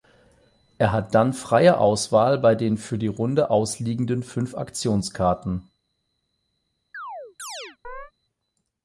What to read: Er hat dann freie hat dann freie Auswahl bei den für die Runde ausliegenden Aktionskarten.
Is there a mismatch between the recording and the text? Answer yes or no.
yes